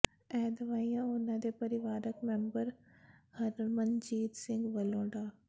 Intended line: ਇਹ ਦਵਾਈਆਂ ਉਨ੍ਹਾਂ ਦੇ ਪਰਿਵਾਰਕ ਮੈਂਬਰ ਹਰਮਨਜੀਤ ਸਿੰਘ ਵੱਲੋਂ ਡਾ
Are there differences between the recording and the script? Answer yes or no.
no